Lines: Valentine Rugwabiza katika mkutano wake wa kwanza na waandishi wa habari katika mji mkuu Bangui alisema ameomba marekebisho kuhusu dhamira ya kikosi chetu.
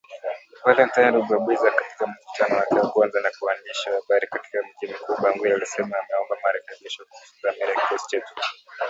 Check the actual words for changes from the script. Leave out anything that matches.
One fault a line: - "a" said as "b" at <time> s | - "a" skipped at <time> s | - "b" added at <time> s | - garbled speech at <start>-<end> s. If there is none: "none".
none